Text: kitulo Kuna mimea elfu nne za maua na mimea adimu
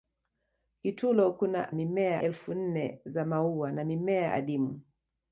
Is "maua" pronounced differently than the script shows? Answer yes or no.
no